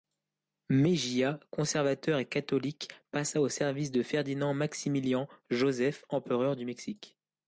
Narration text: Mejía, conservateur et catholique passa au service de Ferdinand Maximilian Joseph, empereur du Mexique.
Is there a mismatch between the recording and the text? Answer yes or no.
no